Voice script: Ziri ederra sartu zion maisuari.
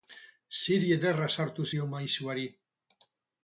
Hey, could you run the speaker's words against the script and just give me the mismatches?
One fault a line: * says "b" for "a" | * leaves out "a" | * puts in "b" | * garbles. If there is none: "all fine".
all fine